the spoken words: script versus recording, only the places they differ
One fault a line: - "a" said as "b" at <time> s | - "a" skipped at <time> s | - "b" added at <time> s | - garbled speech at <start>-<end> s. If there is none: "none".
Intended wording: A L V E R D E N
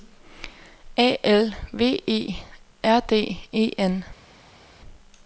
none